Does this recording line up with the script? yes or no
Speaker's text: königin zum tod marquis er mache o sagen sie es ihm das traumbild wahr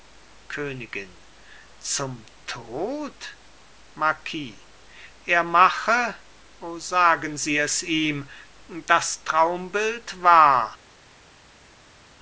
yes